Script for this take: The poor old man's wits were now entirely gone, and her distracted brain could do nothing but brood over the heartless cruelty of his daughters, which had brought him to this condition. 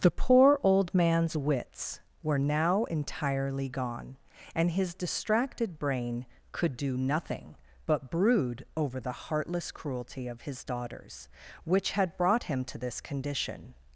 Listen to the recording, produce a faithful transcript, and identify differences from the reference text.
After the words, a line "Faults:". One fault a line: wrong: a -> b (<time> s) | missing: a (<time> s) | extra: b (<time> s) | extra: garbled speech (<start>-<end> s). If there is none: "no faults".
The poor old man's wits were now entirely gone, and his distracted brain could do nothing but brood over the heartless cruelty of his daughters, which had brought him to this condition.
Faults:
wrong: her -> his (4.7 s)